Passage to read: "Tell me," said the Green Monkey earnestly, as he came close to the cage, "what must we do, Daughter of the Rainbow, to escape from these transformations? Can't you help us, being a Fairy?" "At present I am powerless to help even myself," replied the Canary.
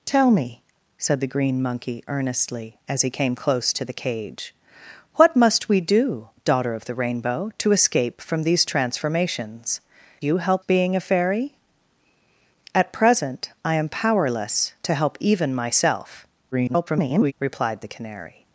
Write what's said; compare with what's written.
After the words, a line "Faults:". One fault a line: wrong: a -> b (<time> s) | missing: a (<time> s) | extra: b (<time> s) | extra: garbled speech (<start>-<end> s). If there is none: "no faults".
"Tell me," said the Green Monkey earnestly, as he came close to the cage, "what must we do, Daughter of the Rainbow, to escape from these transformations? You help being a Fairy?" "At present I am powerless to help even myself," [garbled] replied the Canary.
Faults:
missing: Can't (9.8 s)
missing: us (10.6 s)
extra: garbled speech (16.5-17.3 s)